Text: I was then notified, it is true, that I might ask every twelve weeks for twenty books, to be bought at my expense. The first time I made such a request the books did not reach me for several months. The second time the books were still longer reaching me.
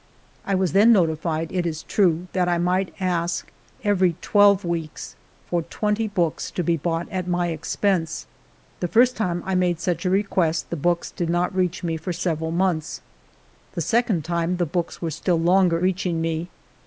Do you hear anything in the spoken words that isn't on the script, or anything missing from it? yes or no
no